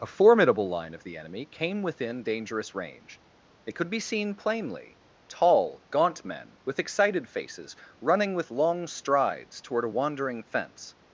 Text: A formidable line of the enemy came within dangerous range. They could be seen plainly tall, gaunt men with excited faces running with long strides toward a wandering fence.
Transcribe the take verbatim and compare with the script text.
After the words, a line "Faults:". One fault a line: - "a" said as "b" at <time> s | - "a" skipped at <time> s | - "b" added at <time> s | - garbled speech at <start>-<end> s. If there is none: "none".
A formidable line of the enemy came within dangerous range. It could be seen plainly tall, gaunt men with excited faces running with long strides toward a wandering fence.
Faults:
- "They" said as "It" at 3.7 s